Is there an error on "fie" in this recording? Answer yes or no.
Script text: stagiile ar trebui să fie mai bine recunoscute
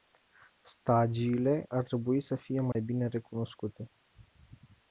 no